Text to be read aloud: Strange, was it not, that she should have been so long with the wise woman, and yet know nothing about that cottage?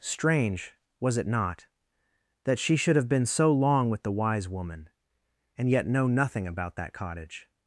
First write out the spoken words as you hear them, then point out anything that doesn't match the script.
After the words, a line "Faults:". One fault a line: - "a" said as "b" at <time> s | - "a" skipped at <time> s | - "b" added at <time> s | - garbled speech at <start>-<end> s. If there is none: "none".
Strange, was it not, that she should have been so long with the wise woman, and yet know nothing about that cottage?
Faults:
none